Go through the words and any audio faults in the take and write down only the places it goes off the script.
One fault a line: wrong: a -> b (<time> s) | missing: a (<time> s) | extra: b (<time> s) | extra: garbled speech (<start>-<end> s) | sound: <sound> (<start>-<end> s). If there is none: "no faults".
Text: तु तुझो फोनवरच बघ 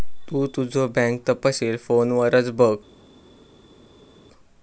extra: बँक तपशील (0.9 s)